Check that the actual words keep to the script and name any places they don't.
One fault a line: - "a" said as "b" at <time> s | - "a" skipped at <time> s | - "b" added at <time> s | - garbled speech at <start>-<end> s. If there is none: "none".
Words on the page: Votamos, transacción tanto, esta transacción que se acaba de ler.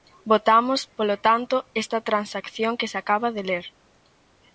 - "transacción" said as "polo" at 1.0 s